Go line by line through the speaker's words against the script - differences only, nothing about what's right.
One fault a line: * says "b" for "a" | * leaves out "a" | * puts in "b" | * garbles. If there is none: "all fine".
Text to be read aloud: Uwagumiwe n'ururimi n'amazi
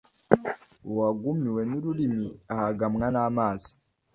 * puts in "ahagamwa"